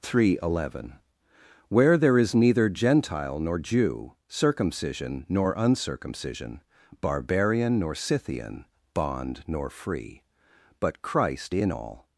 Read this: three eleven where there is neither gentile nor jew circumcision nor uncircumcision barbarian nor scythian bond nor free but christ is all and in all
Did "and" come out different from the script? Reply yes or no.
yes